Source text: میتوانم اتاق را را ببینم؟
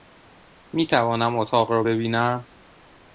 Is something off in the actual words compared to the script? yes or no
yes